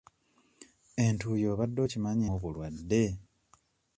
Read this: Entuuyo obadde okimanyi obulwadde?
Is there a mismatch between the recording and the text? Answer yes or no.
no